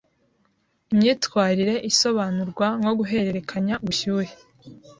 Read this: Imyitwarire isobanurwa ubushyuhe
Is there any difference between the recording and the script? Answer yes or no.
yes